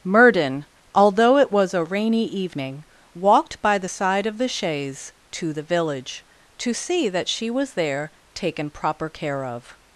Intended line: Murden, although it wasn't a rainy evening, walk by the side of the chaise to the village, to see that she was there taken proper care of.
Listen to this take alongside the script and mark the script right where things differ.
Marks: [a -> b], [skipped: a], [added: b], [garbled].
Murden, although it [wasn't -> was] a rainy evening, [walk -> walked] by the side of the chaise to the village, to see that she was there taken proper care of.